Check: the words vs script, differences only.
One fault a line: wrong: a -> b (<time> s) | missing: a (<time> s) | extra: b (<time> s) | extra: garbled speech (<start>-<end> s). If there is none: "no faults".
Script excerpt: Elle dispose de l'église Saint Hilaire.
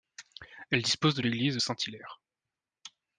no faults